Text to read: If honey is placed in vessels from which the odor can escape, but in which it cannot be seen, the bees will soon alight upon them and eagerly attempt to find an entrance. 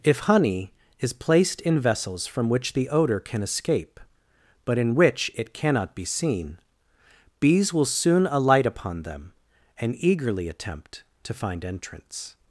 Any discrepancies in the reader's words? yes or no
yes